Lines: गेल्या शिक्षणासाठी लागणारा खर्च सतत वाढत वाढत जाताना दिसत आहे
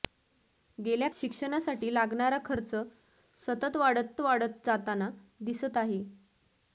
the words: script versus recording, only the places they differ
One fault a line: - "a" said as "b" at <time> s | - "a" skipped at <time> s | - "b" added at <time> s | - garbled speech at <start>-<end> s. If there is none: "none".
none